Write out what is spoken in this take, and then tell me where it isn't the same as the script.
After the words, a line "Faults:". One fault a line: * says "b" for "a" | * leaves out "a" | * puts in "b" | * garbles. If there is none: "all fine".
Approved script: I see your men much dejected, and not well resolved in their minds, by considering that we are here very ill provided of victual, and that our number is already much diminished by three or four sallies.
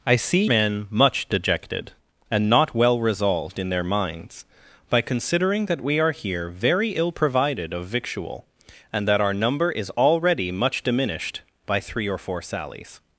I see men much dejected, and not well resolved in their minds, by considering that we are here very ill provided of victual, and that our number is already much diminished by three or four sallies.
Faults:
* leaves out "your"